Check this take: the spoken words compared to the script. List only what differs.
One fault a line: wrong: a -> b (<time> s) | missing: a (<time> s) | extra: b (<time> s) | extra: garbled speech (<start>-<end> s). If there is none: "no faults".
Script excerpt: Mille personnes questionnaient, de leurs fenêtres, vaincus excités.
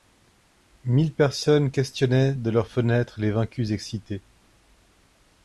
extra: les (3.2 s)